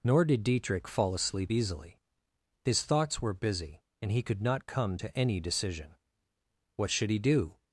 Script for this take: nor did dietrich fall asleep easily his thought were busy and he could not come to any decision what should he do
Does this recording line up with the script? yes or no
no